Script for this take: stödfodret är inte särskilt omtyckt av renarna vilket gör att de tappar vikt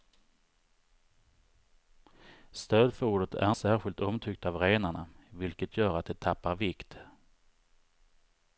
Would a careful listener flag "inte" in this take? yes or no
yes